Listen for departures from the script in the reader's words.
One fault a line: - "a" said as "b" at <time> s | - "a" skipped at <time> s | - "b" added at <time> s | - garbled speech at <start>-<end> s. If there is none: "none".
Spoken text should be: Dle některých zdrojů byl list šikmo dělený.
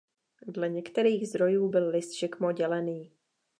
none